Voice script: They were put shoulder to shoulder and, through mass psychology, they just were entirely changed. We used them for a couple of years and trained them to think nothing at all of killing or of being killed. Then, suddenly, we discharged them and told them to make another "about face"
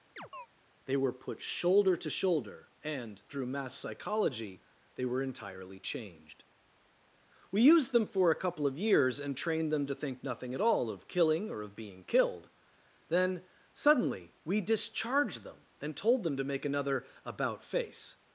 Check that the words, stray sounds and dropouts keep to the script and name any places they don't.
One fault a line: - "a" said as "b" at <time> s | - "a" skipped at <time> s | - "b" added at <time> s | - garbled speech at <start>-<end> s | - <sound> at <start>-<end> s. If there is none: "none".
- chirp at 0.2-0.5 s
- "just" skipped at 5.0 s